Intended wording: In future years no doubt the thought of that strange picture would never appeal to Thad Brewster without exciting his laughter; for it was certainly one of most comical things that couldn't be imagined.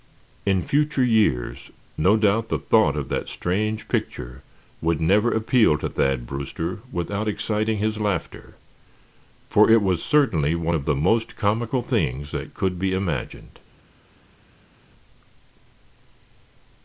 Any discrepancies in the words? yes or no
yes